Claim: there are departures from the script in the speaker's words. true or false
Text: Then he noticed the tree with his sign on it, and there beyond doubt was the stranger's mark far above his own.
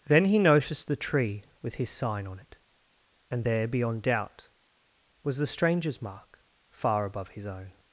false